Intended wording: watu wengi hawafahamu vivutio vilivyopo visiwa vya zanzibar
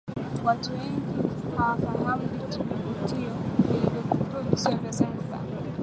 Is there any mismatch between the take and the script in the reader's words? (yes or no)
no